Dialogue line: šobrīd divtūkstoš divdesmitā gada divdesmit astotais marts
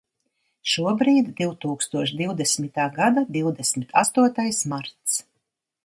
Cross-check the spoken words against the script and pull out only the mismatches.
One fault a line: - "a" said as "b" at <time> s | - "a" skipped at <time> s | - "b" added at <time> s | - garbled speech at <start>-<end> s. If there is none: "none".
none